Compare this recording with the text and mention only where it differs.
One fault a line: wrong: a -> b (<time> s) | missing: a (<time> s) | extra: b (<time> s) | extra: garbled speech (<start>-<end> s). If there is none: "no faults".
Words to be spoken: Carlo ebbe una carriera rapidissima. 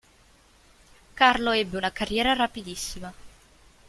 no faults